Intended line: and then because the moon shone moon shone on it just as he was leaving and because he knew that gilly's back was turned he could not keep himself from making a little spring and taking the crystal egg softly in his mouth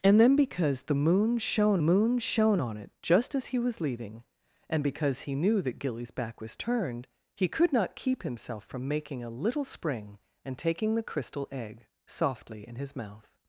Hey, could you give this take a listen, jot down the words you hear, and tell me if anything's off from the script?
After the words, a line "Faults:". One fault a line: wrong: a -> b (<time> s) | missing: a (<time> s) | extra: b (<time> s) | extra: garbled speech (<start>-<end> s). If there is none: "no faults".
and then because the moon shone moon shone on it just as he was leaving and because he knew that gilly's back was turned he could not keep himself from making a little spring and taking the crystal egg softly in his mouth
Faults:
no faults